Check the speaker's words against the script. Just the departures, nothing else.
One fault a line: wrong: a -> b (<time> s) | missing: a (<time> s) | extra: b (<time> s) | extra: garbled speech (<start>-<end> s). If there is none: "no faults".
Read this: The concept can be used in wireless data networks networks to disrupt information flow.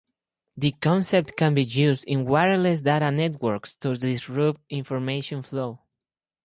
missing: networks (3.8 s)